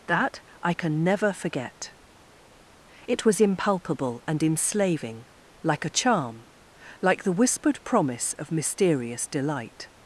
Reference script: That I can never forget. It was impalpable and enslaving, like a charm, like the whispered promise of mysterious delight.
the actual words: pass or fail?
pass